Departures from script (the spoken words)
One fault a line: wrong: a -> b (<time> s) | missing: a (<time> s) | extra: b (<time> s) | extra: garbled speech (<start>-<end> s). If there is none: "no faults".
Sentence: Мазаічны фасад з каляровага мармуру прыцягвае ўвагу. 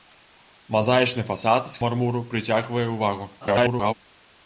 missing: каляровага (1.8 s)
extra: garbled speech (3.4-3.9 s)